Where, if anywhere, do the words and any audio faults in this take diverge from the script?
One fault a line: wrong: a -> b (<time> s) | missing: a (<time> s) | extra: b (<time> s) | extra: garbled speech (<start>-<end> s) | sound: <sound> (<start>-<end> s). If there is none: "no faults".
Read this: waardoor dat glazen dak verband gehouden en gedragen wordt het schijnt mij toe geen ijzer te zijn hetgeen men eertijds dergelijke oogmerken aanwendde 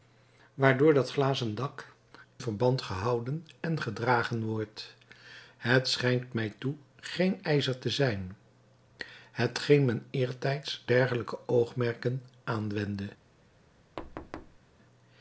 sound: thud (14.0-14.6 s)